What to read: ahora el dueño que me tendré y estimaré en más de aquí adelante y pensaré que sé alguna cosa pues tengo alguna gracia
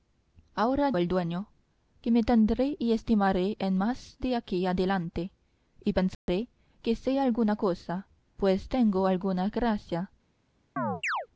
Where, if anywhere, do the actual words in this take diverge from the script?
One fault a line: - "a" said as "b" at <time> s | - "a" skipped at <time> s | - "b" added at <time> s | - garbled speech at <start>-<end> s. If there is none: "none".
none